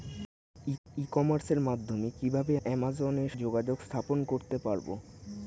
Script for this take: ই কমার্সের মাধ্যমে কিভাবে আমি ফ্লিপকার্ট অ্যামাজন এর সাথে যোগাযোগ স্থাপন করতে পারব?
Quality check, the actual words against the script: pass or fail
fail